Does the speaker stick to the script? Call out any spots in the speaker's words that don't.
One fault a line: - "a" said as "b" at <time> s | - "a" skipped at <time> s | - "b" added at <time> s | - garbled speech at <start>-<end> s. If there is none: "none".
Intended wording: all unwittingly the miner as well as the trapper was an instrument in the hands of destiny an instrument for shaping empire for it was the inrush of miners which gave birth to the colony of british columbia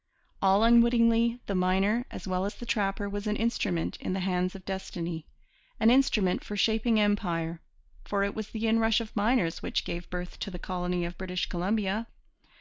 none